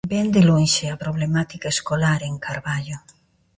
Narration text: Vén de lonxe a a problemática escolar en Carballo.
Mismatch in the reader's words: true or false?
true